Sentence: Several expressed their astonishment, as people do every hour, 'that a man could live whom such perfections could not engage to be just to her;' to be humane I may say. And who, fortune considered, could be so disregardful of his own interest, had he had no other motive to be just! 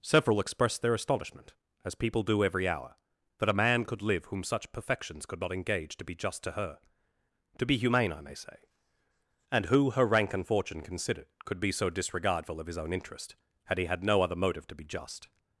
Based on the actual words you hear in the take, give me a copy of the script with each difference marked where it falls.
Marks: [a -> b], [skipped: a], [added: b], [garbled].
Several expressed their astonishment, as people do every hour, 'that a man could live whom such perfections could not engage to be just to her;' to be humane I may say. And who, [added: her rank and] fortune considered, could be so disregardful of his own interest, had he had no other motive to be just!